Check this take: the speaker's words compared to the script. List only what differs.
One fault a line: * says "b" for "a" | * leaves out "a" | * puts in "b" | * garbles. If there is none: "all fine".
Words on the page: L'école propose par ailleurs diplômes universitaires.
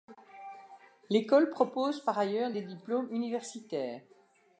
* puts in "des"